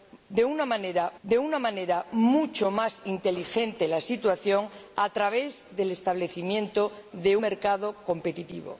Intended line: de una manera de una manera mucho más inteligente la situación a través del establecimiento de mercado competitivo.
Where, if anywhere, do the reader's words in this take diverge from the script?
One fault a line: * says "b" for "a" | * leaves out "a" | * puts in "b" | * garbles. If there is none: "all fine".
all fine